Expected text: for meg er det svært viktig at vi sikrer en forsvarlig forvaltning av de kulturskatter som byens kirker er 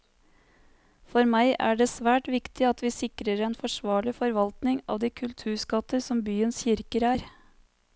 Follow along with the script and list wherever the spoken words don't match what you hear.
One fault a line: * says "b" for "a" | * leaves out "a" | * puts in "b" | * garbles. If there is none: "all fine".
all fine